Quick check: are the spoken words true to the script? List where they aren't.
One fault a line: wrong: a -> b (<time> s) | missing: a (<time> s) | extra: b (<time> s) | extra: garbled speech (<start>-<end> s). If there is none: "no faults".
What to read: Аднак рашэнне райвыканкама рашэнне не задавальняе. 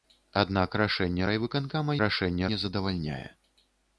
no faults